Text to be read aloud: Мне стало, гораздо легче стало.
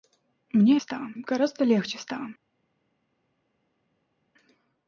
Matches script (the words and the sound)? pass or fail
pass